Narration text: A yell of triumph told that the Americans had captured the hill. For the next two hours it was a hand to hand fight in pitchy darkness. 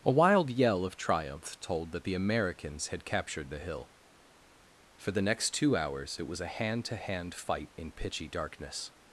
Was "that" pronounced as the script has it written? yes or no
yes